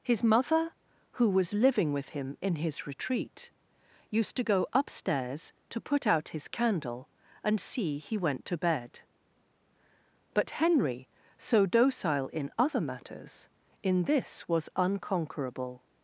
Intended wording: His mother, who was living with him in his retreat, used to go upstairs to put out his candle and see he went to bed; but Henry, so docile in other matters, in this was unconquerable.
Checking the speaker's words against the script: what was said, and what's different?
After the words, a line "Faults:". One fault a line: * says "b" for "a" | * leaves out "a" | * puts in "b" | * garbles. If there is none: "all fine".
His mother, who was living with him in his retreat, used to go upstairs to put out his candle and see he went to bed; but Henry, so docile in other matters, in this was unconquerable.
Faults:
all fine